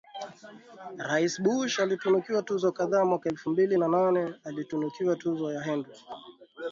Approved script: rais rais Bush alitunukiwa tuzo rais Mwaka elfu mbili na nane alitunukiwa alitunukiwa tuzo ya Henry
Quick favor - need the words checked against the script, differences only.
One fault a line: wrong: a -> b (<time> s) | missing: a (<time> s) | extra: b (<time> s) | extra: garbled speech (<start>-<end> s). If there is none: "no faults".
missing: rais (1.4 s)
wrong: rais -> kadhaa (2.7 s)
missing: alitunukiwa (5.2 s)